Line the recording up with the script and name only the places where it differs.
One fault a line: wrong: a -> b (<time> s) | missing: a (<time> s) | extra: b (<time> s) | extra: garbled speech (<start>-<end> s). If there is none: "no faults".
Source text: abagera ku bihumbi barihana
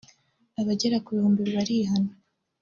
no faults